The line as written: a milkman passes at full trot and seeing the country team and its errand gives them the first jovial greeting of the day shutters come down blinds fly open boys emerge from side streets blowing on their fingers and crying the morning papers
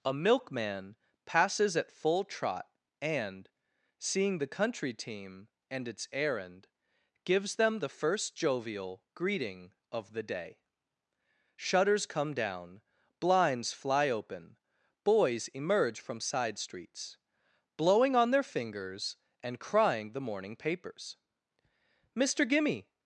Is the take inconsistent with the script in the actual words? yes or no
yes